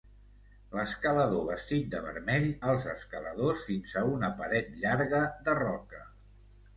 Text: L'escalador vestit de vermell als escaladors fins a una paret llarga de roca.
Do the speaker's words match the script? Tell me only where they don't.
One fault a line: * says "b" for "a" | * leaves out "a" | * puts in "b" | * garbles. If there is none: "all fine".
all fine